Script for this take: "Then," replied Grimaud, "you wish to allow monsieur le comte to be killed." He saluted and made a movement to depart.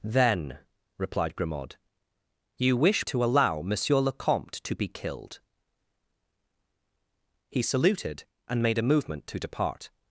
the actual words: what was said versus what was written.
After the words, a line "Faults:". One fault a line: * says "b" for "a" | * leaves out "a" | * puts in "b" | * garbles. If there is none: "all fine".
"Then," replied Grimaud, "you wish to allow monsieur le comte to be killed." He saluted and made a movement to depart.
Faults:
all fine